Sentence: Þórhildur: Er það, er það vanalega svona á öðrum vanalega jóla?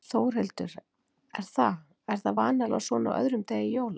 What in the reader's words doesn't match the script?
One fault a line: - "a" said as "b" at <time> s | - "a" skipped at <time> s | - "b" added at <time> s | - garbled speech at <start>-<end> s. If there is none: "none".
- "vanalega" said as "degi" at 3.5 s